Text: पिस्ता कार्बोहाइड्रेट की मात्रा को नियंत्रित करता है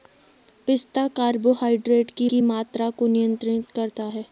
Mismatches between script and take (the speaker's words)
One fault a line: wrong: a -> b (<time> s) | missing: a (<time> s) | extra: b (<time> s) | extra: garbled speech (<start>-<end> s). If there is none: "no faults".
extra: की (2.3 s)